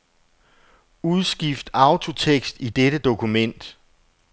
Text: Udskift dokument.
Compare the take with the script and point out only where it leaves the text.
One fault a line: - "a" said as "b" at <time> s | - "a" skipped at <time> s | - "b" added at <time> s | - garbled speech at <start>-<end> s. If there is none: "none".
- "autotekst i dette" added at 1.7 s